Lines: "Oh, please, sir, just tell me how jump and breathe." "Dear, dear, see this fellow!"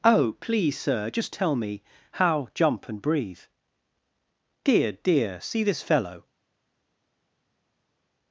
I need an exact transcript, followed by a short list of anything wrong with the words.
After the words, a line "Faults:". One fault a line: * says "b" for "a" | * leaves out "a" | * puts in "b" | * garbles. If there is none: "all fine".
"Oh, please, sir, just tell me how jump and breathe." "Dear, dear, see this fellow!"
Faults:
all fine